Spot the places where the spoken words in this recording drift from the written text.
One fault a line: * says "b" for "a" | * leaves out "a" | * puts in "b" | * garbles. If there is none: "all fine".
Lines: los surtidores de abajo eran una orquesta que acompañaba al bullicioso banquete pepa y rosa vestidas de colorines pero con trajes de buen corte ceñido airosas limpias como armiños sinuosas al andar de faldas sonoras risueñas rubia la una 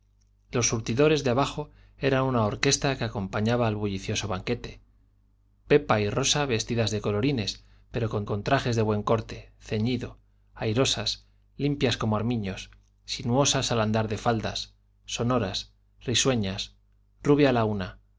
* puts in "con"